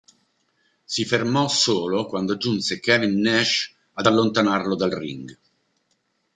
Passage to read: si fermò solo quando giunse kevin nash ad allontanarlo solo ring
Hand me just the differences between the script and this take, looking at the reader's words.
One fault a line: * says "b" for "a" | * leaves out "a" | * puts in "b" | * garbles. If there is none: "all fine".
* says "dal" for "solo"